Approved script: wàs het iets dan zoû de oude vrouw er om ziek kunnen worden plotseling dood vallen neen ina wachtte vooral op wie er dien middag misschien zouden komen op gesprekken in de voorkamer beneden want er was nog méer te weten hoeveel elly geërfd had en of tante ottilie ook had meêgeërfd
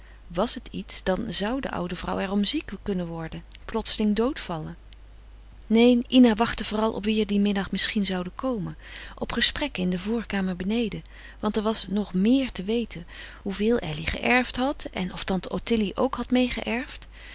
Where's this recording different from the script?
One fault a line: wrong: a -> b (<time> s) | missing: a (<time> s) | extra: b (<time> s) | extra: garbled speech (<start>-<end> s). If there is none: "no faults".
no faults